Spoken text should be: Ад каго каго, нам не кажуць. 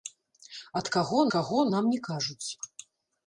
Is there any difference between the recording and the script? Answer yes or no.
no